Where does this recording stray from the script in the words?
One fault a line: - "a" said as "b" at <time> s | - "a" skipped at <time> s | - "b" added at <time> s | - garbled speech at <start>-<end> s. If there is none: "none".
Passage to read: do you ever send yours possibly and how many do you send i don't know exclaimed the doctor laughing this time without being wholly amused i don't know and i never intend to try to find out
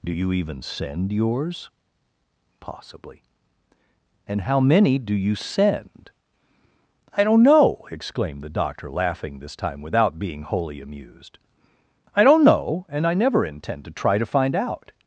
- "ever" said as "even" at 0.3 s